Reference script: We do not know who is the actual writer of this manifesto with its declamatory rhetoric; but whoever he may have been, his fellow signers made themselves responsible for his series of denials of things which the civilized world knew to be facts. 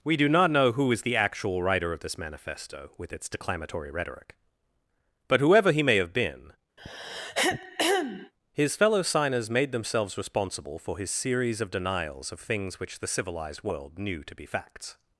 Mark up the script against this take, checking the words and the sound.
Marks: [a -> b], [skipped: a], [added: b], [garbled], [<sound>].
We do not know who is the actual writer of this manifesto with its declamatory rhetoric; but whoever he may have been, [throat clearing] his fellow signers made themselves responsible for his series of denials of things which the civilized world knew to be facts.